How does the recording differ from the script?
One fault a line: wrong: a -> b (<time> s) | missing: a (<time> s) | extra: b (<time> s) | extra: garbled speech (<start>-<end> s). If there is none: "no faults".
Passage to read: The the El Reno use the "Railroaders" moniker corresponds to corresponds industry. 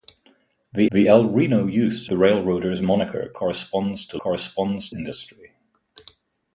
no faults